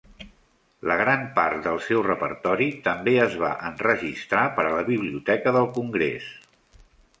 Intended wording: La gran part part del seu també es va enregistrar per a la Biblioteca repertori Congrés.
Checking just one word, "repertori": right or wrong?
wrong